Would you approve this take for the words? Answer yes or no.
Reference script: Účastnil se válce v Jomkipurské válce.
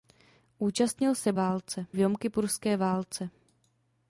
yes